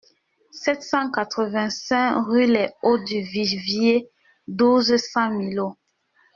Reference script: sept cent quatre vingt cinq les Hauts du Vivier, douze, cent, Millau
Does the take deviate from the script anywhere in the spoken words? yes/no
yes